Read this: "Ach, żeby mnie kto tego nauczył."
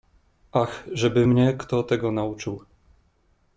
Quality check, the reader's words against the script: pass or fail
pass